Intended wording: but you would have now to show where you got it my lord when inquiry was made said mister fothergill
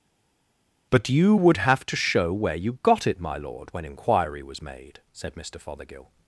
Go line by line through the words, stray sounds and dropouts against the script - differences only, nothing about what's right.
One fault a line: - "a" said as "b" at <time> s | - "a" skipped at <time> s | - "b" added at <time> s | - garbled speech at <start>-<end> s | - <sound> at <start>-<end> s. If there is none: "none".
- "now" skipped at 1.8 s